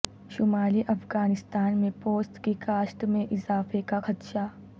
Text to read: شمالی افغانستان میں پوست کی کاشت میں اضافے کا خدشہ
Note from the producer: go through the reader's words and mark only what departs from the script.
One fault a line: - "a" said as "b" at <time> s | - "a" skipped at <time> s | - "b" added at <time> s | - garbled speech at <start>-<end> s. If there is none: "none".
none